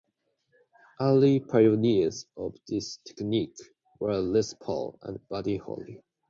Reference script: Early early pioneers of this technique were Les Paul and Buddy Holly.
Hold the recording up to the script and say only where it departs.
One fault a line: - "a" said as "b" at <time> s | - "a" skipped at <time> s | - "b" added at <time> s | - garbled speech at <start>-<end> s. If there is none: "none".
- "early" skipped at 1.4 s